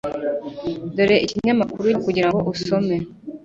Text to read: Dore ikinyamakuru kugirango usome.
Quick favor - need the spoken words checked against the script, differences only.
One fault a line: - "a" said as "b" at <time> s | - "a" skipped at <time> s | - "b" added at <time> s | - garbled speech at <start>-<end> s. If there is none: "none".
none